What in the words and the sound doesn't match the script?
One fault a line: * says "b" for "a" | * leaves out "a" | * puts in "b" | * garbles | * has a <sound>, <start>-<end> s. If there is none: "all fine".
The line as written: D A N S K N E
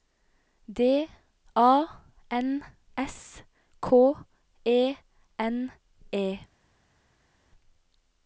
* puts in "E"